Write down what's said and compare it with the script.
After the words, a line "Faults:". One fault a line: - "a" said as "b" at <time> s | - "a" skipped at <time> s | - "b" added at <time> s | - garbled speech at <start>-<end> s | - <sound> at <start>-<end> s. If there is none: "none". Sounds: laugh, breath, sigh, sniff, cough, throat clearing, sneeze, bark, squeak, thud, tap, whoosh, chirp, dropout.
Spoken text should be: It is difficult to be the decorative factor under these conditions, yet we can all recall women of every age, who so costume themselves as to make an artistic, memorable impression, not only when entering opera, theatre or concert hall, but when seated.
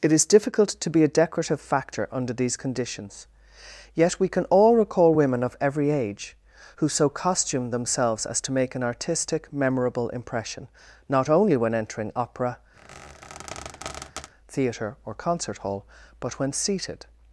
It is difficult to be a decorative factor under these conditions, yet we can all recall women of every age, who so costume themselves as to make an artistic, memorable impression, not only when entering opera, theatre or concert hall, but when seated.
Faults:
- "the" said as "a" at 1.0 s
- squeak at 12.8-14.3 s